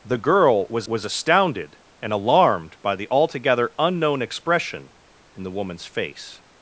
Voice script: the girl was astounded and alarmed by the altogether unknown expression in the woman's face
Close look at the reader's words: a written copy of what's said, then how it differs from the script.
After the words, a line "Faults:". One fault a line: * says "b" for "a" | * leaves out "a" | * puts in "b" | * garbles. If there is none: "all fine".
the girl was was astounded and alarmed by the altogether unknown expression in the woman's face
Faults:
* puts in "was"